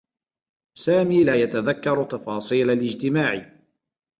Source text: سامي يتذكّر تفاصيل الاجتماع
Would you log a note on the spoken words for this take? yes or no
yes